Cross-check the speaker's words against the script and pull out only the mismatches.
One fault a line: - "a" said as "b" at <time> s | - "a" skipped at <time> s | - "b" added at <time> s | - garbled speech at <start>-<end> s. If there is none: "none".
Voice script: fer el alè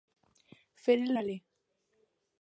none